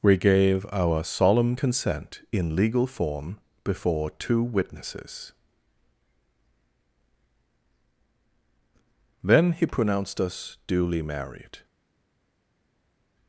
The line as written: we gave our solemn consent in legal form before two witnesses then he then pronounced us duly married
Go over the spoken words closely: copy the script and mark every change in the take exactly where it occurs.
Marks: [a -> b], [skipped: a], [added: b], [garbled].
we gave our solemn consent in legal form before two witnesses then he [skipped: then] pronounced us duly married